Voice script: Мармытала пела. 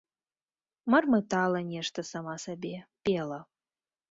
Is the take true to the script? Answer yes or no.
no